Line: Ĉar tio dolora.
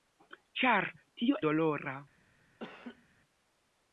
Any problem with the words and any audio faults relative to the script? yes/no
yes